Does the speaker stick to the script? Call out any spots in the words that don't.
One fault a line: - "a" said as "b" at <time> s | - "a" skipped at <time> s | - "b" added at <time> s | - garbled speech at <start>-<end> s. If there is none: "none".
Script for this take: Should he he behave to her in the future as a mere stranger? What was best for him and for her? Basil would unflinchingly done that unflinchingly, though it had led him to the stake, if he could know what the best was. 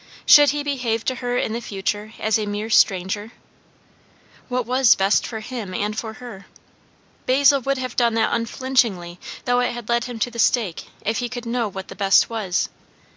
- "he" skipped at 0.6 s
- "unflinchingly" said as "have" at 7.8 s